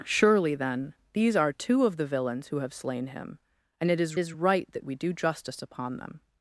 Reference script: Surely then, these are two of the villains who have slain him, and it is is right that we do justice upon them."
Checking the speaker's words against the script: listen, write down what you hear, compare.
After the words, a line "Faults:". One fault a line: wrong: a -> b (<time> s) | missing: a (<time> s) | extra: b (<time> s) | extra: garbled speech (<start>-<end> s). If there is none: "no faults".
Surely then, these are two of the villains who have slain him, and it is is right that we do justice upon them."
Faults:
no faults